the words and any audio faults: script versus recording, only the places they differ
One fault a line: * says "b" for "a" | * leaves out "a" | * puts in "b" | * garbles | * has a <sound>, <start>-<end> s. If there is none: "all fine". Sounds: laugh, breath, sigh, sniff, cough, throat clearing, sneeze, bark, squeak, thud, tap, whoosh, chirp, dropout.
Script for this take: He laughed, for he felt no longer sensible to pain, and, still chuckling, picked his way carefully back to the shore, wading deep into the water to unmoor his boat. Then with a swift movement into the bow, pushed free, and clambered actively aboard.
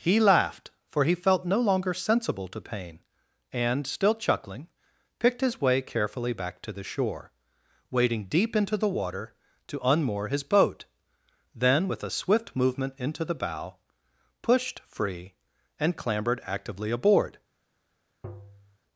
* has a tap, 18.2-18.8 s